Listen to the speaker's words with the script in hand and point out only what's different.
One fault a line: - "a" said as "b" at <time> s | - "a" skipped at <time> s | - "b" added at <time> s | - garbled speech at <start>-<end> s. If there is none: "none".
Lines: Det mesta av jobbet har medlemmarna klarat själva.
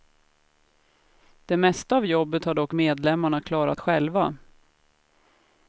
- "dock" added at 2.5 s